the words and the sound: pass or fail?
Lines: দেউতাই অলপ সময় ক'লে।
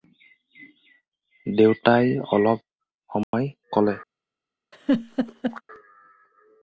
fail